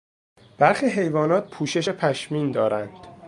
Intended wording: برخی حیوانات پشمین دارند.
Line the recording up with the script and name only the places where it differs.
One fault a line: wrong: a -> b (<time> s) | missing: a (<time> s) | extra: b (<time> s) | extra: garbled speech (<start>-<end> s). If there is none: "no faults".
extra: پوشش (1.5 s)